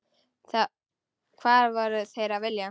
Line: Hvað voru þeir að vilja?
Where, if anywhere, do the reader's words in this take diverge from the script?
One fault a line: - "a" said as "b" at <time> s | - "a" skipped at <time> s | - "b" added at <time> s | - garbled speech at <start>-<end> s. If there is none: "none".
none